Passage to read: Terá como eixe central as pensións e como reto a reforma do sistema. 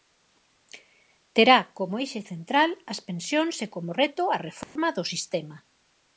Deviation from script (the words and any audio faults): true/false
true